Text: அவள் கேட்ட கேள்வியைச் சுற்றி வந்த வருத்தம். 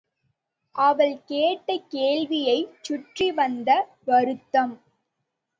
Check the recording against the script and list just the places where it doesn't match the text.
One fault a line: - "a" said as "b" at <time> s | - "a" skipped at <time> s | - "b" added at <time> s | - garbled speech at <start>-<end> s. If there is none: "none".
none